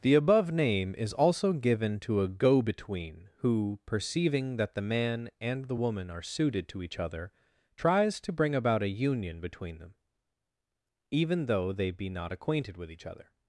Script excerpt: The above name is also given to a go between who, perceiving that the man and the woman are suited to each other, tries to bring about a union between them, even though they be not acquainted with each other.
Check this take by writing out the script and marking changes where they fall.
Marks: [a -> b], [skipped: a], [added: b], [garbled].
The above name is also given to a go between who, perceiving that the man and the woman are suited to each other, tries to bring about a union between them, even though they be not acquainted with each other.